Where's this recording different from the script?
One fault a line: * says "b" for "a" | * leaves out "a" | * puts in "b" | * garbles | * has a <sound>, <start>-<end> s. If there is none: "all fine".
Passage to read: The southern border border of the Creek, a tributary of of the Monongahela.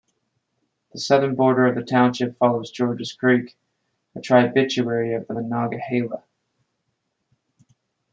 * leaves out "border"
* puts in "township follows Georges"
* leaves out "of"